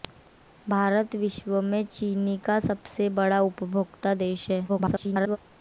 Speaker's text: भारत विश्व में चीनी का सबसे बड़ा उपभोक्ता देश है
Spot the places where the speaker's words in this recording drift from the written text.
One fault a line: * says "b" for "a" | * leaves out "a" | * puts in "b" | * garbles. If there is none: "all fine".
* garbles